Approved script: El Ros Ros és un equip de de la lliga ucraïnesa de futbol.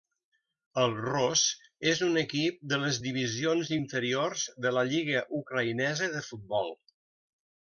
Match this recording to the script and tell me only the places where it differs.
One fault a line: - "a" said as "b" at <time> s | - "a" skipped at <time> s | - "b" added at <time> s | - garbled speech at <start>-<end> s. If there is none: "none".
- "Ros" skipped at 1.4 s
- "les divisions inferiors" added at 2.9 s